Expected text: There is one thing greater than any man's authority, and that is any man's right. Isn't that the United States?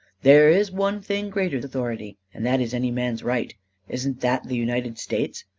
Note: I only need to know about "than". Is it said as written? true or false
false